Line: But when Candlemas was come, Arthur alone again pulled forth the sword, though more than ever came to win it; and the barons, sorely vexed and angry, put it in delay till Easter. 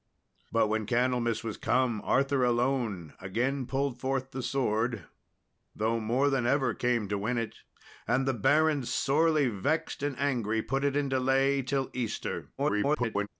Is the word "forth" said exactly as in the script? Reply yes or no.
yes